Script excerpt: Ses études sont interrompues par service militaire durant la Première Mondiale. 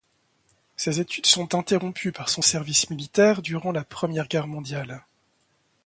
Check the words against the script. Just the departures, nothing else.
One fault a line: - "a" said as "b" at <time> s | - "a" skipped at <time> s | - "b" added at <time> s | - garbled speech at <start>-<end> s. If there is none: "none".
- "son" added at 2.3 s
- "Guerre" added at 4.3 s